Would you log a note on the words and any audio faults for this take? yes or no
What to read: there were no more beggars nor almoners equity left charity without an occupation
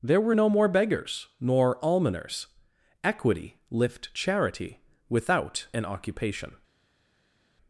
yes